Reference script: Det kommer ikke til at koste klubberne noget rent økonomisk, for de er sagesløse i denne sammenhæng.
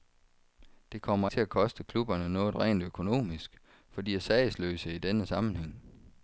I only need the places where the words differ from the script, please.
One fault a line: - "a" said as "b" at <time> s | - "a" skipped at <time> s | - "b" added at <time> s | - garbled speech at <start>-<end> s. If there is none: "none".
- "ikke" skipped at 1.3 s